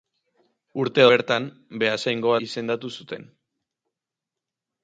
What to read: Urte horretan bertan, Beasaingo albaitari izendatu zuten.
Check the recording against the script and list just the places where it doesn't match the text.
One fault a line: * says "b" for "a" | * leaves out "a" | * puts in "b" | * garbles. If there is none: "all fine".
* leaves out "horretan"
* leaves out "albaitari"